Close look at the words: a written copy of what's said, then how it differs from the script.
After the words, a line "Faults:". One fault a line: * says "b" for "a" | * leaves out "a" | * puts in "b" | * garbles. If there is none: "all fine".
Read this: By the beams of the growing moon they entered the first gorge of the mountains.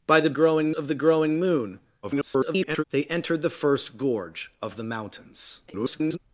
By the growing of the growing moon [garbled] they entered the first gorge of the mountains. [garbled]
Faults:
* says "growing" for "beams"
* garbles
* garbles